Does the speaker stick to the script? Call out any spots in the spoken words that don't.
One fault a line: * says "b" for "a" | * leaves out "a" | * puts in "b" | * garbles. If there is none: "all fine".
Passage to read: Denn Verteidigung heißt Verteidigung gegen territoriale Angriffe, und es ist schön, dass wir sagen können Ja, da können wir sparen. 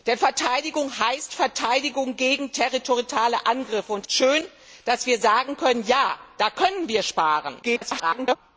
* leaves out "es"
* garbles